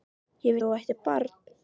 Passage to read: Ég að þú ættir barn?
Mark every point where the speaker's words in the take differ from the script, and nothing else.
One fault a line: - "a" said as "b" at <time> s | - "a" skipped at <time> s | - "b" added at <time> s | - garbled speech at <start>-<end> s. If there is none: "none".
none